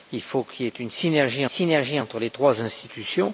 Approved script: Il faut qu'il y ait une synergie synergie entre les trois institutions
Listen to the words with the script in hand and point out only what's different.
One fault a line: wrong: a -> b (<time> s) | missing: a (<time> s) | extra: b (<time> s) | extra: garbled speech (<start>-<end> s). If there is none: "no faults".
no faults